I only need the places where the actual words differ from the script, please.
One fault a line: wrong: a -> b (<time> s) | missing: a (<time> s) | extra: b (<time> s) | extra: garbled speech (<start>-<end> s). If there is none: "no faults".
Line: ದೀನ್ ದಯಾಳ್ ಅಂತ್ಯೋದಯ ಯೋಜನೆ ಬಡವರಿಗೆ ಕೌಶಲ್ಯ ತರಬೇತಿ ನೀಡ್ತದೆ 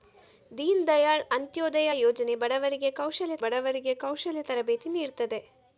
extra: ಬಡವರಿಗೆ ಕೌಶಲ್ಯ (3.4 s)